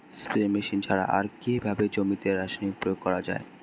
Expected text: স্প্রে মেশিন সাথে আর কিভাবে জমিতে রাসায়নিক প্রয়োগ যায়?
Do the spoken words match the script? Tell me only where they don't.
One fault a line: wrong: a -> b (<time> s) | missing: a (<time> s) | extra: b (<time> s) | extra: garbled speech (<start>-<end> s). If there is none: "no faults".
wrong: সাথে -> ছাড়া (0.9 s)
extra: করা (3.0 s)